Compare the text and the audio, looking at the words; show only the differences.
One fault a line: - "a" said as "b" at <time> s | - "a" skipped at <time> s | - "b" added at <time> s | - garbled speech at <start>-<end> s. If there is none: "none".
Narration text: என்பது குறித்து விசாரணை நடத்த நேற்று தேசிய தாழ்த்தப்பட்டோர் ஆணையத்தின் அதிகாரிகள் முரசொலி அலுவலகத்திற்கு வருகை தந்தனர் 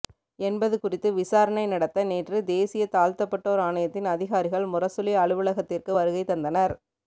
none